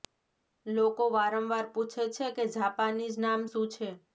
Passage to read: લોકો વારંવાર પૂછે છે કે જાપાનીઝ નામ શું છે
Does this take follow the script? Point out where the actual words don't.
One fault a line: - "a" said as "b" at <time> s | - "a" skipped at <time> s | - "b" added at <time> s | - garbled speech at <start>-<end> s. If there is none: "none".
none